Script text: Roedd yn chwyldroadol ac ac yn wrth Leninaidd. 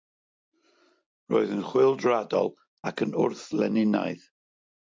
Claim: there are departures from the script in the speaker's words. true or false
true